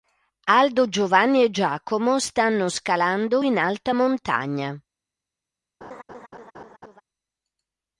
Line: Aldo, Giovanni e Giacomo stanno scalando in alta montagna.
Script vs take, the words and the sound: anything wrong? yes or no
yes